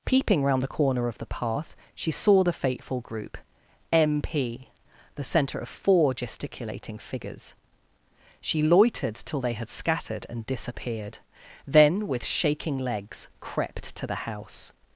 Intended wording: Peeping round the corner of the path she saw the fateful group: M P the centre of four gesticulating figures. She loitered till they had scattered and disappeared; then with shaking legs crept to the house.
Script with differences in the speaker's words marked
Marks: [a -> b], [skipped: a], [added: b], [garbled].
Peeping round the corner of the path she saw the fateful group: M P the centre of four gesticulating figures. She loitered till they had scattered and disappeared; then with shaking legs crept to the house.